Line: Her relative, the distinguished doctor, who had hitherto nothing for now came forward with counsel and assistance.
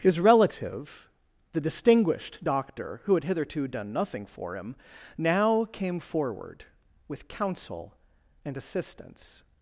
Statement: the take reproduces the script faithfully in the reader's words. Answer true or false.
false